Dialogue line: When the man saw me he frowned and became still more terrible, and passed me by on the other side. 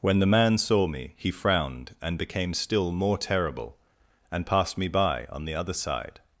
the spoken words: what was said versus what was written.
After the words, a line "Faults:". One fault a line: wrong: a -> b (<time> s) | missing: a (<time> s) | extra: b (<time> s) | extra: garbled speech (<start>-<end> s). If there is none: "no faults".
When the man saw me he frowned and became still more terrible, and passed me by on the other side.
Faults:
no faults